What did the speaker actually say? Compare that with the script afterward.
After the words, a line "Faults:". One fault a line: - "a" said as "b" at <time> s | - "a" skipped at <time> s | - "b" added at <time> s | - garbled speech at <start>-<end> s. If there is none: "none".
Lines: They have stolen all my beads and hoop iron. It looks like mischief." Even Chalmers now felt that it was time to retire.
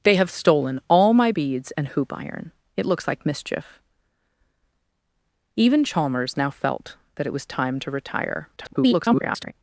They have stolen all my beads and hoop iron. It looks like mischief." Even Chalmers now felt that it was time to retire. [garbled]
Faults:
- garbled speech at 8.6-9.5 s